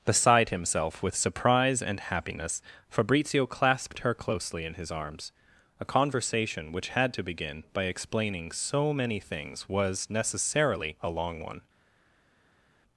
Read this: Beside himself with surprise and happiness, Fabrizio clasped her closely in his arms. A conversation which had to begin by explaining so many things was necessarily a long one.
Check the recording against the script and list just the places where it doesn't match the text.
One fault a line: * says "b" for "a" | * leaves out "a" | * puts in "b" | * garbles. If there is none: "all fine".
all fine